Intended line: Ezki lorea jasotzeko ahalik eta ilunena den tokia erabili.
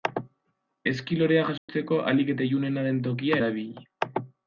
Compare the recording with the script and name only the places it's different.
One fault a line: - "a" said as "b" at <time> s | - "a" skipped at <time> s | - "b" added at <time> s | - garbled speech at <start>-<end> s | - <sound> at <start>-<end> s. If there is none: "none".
- dropout at 1.6-1.7 s